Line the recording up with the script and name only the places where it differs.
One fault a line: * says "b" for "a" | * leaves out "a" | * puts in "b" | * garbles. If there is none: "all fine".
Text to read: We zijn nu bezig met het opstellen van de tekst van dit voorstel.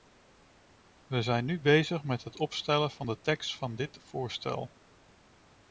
all fine